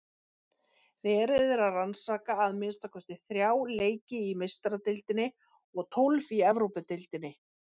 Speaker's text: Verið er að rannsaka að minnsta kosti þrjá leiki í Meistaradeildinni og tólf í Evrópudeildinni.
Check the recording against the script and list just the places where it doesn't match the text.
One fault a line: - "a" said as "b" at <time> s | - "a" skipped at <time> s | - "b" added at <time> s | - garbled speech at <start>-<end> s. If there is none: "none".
none